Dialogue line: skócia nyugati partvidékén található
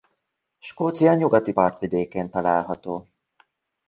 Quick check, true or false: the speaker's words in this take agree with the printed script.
true